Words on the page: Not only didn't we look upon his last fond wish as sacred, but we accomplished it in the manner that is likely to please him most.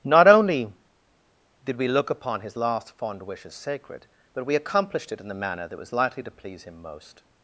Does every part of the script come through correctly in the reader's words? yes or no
no